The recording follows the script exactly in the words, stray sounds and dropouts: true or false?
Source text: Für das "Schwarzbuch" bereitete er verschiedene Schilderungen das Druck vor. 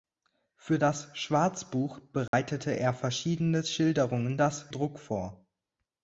false